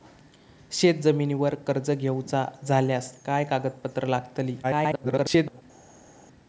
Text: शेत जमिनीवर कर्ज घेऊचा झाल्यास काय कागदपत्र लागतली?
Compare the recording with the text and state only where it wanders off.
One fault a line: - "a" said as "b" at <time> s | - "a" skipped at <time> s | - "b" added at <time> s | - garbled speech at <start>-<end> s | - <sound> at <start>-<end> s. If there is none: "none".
- garbled speech at 4.6-5.6 s